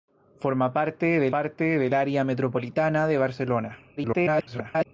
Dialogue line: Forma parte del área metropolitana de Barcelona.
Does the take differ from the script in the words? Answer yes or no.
yes